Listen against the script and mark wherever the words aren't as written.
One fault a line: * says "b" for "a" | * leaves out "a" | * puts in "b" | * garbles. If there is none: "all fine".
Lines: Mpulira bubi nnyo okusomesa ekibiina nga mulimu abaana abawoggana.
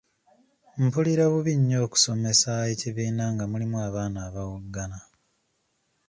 all fine